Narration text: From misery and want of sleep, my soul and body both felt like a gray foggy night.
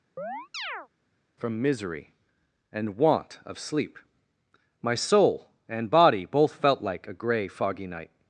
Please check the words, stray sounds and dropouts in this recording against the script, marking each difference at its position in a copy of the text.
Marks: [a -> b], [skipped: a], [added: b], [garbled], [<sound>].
[chirp] From misery and want of sleep, my soul and body both felt like a gray foggy night.